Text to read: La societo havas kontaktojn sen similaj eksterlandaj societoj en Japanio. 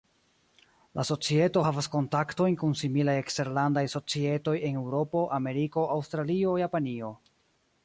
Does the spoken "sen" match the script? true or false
false